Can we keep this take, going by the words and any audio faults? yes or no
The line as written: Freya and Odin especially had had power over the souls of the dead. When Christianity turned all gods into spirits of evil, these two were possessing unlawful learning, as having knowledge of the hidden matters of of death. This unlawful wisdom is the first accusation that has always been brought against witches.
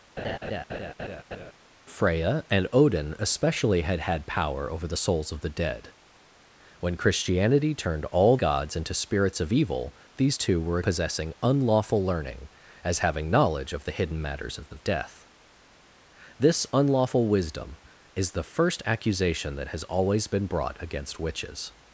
no